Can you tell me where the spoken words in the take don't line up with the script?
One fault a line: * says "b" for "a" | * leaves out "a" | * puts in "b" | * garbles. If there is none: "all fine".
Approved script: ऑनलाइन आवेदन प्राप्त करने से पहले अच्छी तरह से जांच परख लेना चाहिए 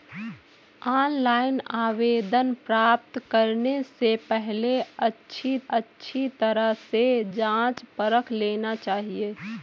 * puts in "अच्छी"